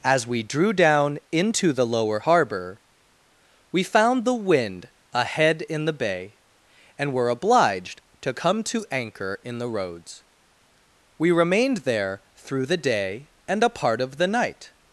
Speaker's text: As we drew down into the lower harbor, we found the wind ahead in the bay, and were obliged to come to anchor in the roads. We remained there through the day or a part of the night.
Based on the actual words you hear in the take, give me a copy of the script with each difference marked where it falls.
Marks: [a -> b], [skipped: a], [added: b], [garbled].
As we drew down into the lower harbor, we found the wind ahead in the bay, and were obliged to come to anchor in the roads. We remained there through the day [or -> and] a part of the night.